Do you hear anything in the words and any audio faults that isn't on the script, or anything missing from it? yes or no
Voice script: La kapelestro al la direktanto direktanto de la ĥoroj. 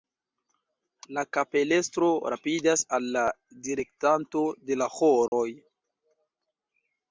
yes